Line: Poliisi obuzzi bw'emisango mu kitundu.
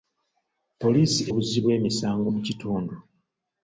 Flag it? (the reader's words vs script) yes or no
no